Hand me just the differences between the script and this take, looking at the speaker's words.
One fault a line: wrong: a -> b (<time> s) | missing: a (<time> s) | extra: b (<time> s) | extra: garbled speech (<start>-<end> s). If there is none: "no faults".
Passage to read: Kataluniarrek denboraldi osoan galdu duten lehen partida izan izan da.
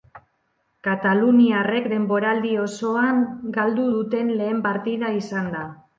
missing: izan (5.5 s)